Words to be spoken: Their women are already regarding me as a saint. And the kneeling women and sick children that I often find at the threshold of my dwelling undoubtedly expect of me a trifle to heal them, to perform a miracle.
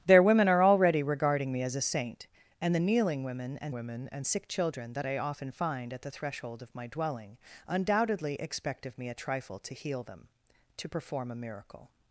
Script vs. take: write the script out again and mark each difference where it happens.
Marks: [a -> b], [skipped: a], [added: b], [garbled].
Their women are already regarding me as a saint. And the kneeling women and [added: women and] sick children that I often find at the threshold of my dwelling undoubtedly expect of me a trifle to heal them, to perform a miracle.